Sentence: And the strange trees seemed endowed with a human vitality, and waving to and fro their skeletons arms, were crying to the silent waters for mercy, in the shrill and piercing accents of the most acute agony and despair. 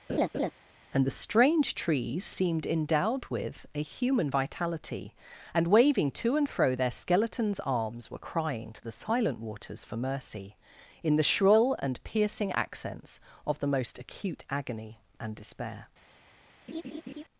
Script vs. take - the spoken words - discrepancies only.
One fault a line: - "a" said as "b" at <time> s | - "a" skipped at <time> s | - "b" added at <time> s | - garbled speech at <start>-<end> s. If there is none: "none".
none